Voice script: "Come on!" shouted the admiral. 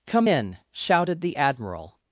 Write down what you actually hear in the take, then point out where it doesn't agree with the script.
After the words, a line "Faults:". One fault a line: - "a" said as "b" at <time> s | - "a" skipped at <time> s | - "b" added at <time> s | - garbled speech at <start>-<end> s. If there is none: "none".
"Come in!" shouted the admiral.
Faults:
- "on" said as "in" at 0.2 s